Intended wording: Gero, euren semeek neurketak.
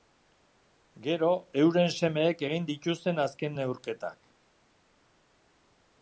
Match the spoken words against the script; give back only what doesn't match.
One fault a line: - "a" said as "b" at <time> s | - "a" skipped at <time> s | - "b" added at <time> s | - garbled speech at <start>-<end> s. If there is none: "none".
- "egin dituzten azken" added at 2.5 s